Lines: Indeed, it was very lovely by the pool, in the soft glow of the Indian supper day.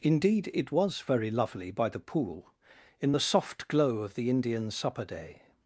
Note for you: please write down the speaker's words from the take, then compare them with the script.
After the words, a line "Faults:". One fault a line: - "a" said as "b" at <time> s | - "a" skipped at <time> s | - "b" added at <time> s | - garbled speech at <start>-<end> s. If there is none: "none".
Indeed, it was very lovely by the pool, in the soft glow of the Indian supper day.
Faults:
none